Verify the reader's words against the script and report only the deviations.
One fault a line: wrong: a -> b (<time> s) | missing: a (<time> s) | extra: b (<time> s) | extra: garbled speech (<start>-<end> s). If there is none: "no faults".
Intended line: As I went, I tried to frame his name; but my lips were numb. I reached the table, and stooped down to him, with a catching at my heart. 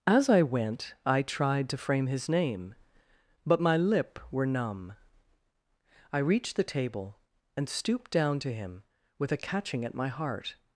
wrong: lips -> lip (3.8 s)